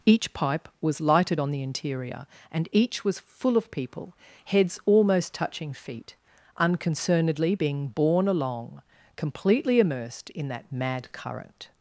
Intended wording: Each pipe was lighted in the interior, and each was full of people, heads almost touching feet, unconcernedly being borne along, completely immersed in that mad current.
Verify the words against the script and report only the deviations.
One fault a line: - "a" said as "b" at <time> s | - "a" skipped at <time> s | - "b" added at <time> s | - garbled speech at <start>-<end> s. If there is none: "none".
- "in" said as "on" at 1.4 s